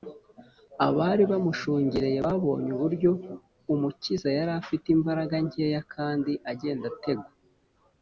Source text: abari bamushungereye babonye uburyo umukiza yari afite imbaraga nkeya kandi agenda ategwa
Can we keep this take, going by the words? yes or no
yes